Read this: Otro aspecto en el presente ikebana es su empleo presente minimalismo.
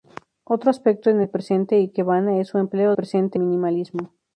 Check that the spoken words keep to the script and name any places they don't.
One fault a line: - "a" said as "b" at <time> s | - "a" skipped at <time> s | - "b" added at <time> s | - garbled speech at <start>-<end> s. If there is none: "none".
none